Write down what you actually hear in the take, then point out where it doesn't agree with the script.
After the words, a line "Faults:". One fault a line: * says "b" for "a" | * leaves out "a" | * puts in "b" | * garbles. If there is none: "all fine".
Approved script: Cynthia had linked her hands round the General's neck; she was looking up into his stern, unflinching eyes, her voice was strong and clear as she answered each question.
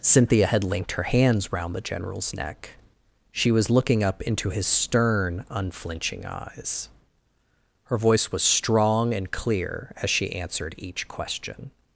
Cynthia had linked her hands round the General's neck; she was looking up into his stern, unflinching eyes, her voice was strong and clear as she answered each question.
Faults:
all fine